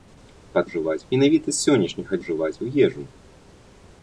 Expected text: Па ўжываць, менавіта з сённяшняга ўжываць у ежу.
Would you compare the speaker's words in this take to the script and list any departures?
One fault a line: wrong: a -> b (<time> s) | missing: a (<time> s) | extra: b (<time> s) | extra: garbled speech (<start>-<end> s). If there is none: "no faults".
no faults